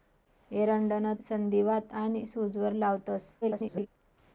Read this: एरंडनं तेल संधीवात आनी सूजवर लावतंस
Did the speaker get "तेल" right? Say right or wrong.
wrong